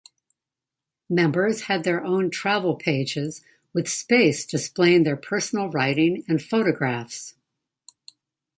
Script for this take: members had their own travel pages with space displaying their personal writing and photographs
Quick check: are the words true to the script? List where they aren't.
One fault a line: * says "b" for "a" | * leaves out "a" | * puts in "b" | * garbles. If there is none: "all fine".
all fine